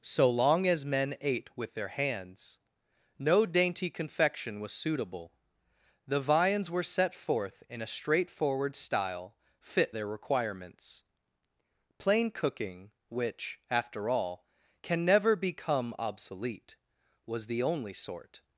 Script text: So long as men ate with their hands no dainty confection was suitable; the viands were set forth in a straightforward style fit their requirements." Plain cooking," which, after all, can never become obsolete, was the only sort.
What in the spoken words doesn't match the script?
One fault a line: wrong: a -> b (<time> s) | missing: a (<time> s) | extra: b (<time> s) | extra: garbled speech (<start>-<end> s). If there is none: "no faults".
no faults